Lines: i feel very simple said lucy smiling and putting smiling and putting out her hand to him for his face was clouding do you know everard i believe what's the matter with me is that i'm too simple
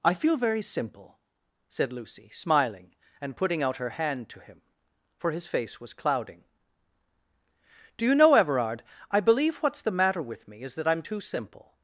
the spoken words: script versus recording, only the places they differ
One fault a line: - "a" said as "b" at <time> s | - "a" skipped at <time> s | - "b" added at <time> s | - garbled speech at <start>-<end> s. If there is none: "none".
- "smiling and putting" skipped at 3.6 s